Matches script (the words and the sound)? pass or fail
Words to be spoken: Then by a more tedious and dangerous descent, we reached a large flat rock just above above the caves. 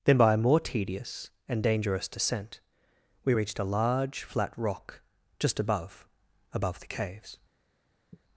fail